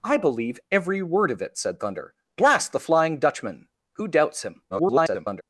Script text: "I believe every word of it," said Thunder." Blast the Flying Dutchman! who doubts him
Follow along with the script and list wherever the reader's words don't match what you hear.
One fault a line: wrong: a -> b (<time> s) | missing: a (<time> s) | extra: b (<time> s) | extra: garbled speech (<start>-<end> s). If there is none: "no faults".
extra: garbled speech (4.7-5.4 s)